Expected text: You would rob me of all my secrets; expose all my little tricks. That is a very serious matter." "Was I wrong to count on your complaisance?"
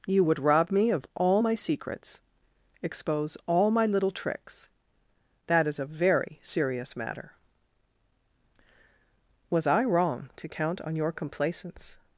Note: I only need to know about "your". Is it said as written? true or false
true